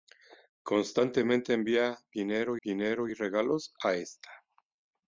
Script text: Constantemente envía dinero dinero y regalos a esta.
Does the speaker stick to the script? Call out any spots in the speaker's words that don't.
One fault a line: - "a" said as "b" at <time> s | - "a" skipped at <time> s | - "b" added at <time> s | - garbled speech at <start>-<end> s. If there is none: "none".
none